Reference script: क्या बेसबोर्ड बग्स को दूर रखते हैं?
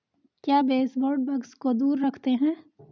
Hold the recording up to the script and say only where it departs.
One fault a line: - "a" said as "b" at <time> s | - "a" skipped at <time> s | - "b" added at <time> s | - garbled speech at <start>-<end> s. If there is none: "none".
none